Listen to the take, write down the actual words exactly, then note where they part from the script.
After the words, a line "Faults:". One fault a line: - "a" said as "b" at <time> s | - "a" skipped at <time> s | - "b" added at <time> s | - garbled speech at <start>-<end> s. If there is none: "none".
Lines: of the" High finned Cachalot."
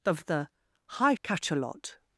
of the" High Cachalot."
Faults:
- "finned" skipped at 1.1 s